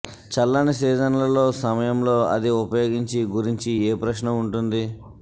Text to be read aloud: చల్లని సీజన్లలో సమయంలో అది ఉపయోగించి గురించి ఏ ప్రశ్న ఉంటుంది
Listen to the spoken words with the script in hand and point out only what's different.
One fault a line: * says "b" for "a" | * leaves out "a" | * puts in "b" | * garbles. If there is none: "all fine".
all fine